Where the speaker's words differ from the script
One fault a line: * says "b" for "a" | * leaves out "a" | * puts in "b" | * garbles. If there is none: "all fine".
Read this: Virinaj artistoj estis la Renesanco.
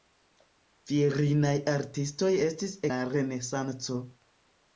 all fine